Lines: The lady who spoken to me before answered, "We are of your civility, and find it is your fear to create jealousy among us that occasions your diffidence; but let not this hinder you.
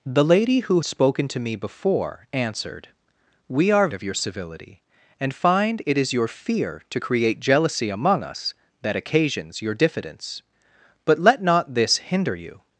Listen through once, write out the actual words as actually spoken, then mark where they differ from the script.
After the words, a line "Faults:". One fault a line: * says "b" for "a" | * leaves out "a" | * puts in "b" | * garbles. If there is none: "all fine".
The lady who spoken to me before answered, "We are of your civility, and find it is your fear to create jealousy among us that occasions your diffidence; but let not this hinder you.
Faults:
all fine